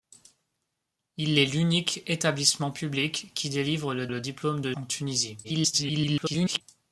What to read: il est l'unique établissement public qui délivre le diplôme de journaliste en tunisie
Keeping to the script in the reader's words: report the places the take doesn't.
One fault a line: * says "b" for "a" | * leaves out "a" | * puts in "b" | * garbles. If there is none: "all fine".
* puts in "le"
* leaves out "journaliste"
* garbles